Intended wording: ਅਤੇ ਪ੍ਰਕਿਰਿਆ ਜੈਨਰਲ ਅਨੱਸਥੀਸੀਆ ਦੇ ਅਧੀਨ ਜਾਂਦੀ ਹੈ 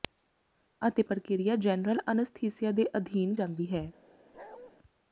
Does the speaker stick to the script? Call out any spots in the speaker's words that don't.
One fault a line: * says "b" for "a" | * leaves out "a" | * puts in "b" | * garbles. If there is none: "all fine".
all fine